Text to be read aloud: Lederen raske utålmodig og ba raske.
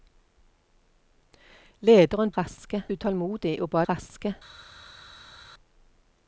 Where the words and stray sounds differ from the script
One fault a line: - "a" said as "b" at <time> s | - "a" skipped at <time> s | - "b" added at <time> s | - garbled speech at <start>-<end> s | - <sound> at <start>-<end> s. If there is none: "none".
none